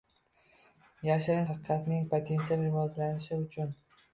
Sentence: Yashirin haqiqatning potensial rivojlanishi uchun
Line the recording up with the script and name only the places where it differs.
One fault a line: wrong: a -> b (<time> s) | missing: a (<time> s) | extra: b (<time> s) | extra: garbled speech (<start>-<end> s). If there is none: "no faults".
no faults